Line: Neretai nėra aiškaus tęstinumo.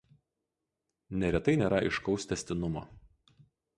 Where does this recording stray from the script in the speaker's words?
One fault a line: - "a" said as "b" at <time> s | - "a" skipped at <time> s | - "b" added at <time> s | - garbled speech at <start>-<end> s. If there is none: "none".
none